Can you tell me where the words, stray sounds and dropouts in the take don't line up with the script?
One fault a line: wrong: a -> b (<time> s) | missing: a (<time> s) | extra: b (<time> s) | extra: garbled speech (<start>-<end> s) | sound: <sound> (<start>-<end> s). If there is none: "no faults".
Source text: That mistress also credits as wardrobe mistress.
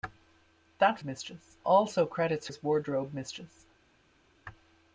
no faults